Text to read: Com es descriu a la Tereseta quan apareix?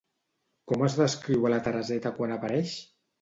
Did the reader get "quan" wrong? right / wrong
right